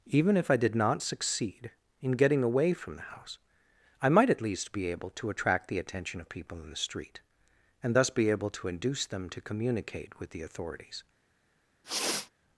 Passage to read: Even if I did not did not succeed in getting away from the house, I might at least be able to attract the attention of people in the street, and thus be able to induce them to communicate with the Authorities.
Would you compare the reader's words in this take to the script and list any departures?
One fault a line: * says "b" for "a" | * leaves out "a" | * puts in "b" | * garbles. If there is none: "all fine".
* leaves out "did not"